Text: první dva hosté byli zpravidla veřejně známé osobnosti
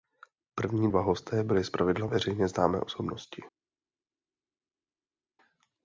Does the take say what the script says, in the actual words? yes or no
yes